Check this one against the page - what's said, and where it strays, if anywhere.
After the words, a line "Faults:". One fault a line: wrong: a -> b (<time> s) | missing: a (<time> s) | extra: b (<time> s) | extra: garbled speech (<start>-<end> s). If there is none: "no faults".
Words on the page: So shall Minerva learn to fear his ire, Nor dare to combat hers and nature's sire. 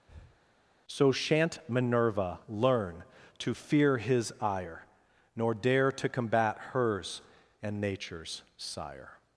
So shan't Minerva learn to fear his ire, Nor dare to combat hers and nature's sire.
Faults:
wrong: shall -> shan't (1.1 s)